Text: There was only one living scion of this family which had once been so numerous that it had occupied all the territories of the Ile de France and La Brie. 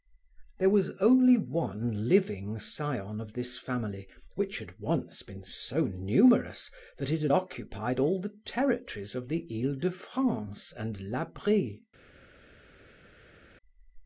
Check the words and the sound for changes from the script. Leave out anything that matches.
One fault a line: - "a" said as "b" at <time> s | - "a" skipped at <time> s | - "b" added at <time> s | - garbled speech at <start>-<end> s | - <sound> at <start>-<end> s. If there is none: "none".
none